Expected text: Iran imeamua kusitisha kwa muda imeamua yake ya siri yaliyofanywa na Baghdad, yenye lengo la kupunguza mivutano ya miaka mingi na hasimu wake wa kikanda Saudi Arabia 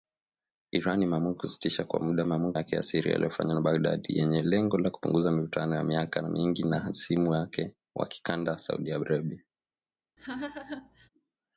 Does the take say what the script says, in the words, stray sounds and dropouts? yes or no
no